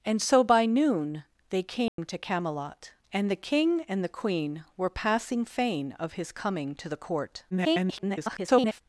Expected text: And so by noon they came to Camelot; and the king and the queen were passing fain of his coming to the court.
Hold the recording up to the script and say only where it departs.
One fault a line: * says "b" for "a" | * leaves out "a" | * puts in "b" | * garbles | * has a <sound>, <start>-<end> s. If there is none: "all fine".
* has a dropout, 1.9-2.0 s
* garbles